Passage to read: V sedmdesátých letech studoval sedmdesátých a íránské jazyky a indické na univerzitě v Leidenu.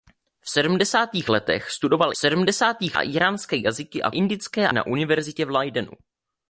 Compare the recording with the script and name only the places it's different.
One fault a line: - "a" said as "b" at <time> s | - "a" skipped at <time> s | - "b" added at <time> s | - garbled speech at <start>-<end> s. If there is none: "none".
none